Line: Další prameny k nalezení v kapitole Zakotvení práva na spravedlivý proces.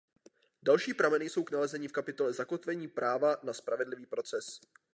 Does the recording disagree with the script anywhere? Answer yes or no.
yes